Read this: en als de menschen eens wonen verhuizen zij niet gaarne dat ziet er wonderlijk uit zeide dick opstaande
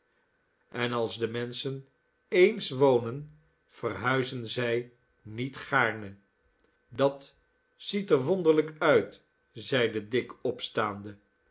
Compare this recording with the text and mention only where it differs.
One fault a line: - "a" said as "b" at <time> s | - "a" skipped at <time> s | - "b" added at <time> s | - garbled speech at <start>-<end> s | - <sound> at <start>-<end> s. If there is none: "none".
none